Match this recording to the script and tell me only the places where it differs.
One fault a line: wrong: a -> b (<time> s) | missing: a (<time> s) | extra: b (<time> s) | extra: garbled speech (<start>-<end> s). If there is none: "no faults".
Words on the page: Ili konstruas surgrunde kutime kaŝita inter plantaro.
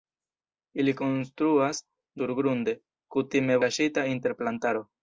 no faults